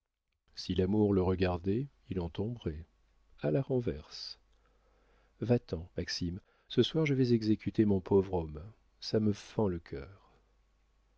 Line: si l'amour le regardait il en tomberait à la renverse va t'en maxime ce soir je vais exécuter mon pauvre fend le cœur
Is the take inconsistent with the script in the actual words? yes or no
yes